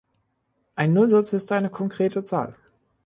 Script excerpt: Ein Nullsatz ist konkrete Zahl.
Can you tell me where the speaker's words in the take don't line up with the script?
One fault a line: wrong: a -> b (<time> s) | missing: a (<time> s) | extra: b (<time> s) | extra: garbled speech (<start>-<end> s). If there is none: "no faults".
extra: eine (1.5 s)